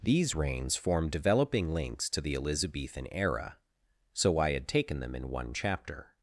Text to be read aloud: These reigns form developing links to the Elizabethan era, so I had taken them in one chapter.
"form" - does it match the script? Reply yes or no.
yes